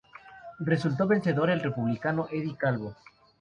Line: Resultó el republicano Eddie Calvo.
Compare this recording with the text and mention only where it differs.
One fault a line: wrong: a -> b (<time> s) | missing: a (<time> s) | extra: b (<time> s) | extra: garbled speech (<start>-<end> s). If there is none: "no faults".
extra: vencedor (1.1 s)